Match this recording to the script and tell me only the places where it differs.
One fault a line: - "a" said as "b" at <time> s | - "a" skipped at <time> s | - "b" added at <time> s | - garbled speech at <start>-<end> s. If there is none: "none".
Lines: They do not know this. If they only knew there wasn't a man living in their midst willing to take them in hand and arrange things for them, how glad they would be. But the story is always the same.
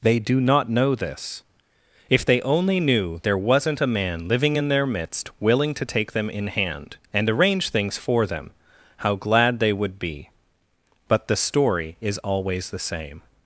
none